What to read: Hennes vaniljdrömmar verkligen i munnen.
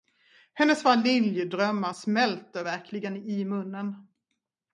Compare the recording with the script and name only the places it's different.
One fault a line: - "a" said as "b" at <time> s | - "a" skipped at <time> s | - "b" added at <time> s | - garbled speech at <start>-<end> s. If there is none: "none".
- "smälter" added at 1.9 s